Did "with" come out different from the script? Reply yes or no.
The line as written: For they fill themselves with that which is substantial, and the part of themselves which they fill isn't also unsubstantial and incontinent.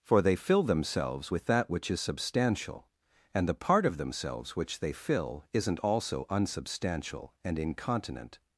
no